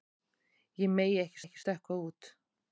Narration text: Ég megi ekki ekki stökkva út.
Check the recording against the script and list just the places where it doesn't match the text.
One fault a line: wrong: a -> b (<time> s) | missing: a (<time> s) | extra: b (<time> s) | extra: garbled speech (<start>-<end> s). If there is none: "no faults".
no faults